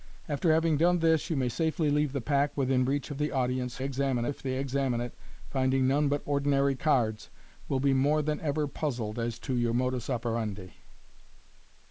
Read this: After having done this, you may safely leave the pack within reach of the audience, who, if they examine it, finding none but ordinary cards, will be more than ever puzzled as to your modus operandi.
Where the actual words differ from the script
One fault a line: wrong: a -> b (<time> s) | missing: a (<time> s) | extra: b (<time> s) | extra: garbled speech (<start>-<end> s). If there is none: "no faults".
wrong: who -> examine (3.8 s)